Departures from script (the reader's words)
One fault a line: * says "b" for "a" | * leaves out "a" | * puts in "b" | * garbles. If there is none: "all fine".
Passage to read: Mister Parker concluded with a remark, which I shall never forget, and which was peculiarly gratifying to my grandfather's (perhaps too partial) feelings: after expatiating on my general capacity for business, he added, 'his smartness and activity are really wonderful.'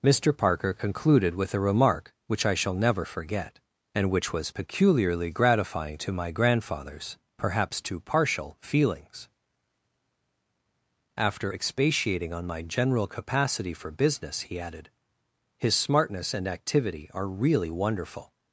all fine